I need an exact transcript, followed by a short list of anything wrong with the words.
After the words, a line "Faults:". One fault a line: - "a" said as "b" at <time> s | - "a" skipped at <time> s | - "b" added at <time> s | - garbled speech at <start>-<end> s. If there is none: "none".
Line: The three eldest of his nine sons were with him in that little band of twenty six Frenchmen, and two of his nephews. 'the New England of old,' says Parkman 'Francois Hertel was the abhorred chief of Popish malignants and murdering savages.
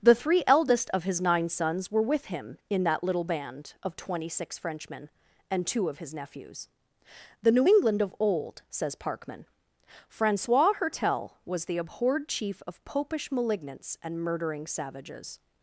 The three eldest of his nine sons were with him in that little band of twenty six Frenchmen, and two of his nephews. 'the New England of old,' says Parkman 'Francois Hertel was the abhorred chief of Popish malignants and murdering savages.
Faults:
none